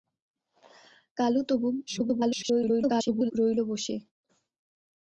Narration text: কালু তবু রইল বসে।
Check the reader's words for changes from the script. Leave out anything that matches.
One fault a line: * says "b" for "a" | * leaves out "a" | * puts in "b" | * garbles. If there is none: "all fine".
* garbles